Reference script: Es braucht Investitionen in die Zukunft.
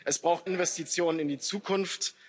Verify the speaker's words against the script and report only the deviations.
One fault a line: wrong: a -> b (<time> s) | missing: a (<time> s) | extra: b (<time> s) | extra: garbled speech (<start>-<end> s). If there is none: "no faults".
no faults